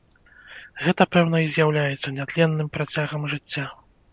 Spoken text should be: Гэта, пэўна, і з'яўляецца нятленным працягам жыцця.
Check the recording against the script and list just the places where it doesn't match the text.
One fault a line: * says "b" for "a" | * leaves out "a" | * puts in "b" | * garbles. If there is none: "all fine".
all fine